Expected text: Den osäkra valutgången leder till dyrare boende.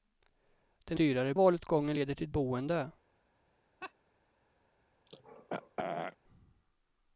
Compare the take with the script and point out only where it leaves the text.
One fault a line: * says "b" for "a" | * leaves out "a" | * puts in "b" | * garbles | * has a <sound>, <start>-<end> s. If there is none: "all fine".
* says "dyrare" for "osäkra"
* leaves out "dyrare"
* has a laugh, 3.8-3.9 s
* has a throat clearing, 5.1-6.2 s